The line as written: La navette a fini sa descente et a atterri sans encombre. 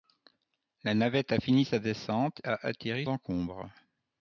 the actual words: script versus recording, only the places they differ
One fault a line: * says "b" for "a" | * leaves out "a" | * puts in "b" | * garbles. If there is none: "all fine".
* leaves out "et"
* leaves out "sans"